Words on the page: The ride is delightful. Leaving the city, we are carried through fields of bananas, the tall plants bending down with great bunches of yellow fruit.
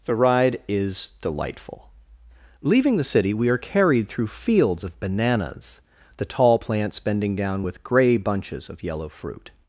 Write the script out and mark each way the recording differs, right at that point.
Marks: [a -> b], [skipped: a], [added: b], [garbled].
The ride is delightful. Leaving the city, we are carried through fields of bananas, the tall plants bending down with [great -> grey] bunches of yellow fruit.